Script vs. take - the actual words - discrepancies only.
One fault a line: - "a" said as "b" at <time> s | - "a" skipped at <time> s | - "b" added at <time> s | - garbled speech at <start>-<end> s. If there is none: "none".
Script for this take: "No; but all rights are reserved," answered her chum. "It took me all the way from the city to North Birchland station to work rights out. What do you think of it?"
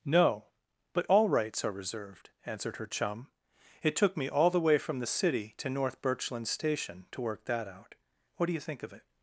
- "rights" said as "that" at 7.5 s